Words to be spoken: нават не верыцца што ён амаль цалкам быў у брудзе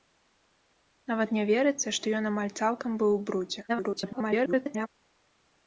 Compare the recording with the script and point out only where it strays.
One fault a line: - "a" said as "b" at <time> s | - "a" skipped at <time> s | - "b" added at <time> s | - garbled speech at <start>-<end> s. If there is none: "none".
- garbled speech at 3.7-4.9 s